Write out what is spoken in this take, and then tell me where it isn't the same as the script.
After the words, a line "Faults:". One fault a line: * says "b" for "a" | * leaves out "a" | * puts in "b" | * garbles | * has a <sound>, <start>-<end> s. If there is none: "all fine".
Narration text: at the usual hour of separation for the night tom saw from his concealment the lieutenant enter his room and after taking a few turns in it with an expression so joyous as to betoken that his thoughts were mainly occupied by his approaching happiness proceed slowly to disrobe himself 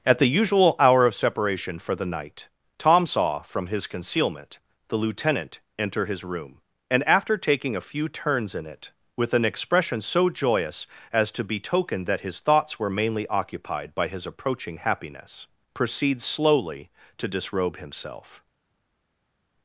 at the usual hour of separation for the night tom saw from his concealment the lieutenant enter his room and after taking a few turns in it with an expression so joyous as to betoken that his thoughts were mainly occupied by his approaching happiness proceed slowly to disrobe himself
Faults:
all fine